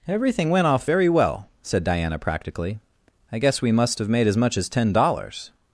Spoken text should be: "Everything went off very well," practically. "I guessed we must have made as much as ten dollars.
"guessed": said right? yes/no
no